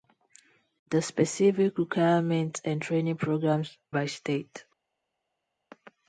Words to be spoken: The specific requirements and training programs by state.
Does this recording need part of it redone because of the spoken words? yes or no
no